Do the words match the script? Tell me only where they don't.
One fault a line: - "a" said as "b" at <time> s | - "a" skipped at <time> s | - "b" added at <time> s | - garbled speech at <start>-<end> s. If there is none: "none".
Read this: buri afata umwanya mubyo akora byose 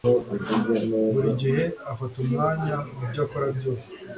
- "gihe" added at 1.4 s